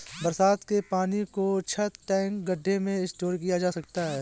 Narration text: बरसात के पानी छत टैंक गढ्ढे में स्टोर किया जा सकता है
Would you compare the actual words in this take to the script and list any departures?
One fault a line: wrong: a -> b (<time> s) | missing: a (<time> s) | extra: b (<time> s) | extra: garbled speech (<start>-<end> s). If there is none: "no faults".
extra: को (1.3 s)